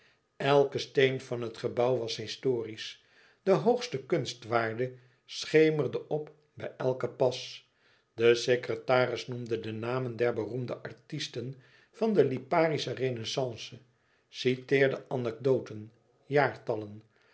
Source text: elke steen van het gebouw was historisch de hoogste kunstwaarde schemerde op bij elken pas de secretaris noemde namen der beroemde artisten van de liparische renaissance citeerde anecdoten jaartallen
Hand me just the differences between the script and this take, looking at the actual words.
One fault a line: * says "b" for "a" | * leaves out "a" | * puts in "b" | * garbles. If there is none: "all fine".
* puts in "de"